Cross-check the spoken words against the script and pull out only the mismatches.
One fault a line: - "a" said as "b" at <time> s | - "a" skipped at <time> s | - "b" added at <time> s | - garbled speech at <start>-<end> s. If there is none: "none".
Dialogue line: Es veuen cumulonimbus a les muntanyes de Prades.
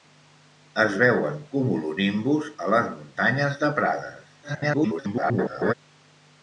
- garbled speech at 4.4-5.7 s